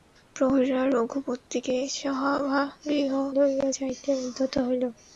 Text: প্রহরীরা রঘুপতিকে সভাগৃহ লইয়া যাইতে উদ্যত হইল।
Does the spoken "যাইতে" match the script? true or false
true